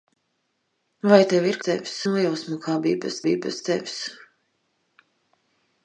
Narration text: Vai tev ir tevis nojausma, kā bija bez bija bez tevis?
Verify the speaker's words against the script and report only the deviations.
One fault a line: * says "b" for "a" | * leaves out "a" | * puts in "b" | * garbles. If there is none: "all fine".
all fine